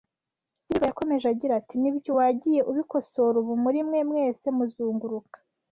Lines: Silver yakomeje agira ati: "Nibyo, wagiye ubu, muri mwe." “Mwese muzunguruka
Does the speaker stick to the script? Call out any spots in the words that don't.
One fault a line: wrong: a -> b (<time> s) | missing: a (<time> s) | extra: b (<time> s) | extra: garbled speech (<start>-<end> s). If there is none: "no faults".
extra: ubikosora (2.7 s)